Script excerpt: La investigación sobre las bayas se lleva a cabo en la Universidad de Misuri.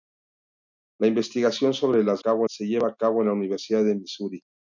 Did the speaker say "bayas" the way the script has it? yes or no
no